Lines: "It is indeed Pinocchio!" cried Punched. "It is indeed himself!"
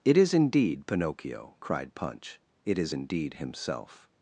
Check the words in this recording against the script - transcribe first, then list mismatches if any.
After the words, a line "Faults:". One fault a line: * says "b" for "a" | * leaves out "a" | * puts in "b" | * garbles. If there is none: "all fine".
"It is indeed Pinocchio!" cried Punch. "It is indeed himself!"
Faults:
* says "Punch" for "Punched"